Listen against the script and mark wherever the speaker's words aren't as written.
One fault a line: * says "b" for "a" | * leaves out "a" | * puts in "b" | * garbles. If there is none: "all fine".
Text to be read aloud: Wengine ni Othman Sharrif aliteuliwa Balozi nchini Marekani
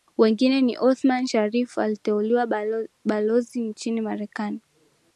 all fine